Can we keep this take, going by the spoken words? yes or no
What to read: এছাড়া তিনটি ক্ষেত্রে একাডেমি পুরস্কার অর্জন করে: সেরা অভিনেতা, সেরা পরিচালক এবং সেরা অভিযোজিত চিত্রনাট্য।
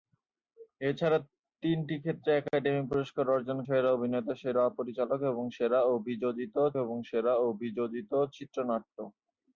no